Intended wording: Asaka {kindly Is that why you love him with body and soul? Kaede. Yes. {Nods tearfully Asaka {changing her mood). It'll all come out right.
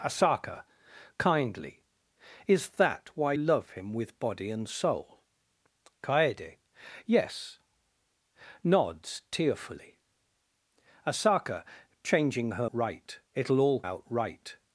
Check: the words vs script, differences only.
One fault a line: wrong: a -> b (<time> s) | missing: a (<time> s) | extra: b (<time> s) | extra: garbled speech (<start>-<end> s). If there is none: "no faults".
missing: you (3.3 s)
wrong: mood -> right (12.7 s)
missing: come (13.8 s)